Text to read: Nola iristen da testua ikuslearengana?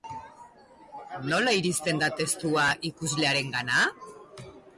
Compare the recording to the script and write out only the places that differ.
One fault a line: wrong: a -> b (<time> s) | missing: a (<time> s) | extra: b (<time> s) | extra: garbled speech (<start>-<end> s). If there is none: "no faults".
no faults